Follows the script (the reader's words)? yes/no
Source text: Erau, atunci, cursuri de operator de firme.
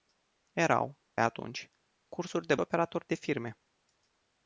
yes